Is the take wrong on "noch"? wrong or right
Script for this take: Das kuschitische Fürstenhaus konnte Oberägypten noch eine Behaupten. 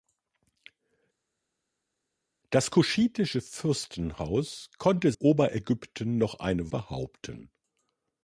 right